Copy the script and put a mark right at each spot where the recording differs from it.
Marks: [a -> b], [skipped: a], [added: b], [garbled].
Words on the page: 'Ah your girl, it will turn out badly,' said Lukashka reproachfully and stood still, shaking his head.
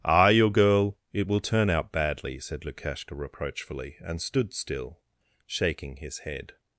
'Ah your girl, it will turn out badly,' said Lukashka reproachfully and stood still, shaking his head.